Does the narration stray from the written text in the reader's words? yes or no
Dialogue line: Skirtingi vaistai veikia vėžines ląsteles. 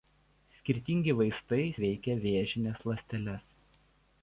no